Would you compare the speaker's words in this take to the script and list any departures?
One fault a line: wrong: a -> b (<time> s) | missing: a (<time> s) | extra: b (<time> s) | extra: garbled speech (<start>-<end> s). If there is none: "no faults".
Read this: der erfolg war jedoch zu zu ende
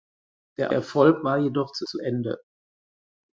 no faults